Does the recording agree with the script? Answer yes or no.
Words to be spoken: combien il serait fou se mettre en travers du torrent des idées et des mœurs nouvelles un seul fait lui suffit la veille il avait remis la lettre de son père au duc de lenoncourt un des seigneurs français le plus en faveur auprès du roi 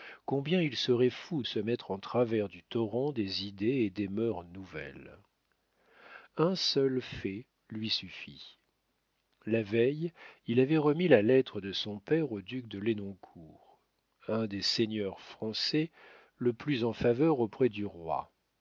yes